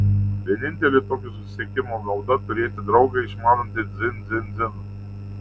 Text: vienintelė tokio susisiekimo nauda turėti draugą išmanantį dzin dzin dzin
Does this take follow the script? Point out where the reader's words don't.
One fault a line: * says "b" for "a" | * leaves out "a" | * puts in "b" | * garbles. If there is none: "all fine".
all fine